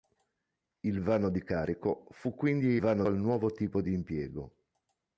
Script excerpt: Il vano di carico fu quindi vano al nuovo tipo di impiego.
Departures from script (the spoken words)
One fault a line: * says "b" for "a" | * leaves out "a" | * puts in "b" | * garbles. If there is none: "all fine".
all fine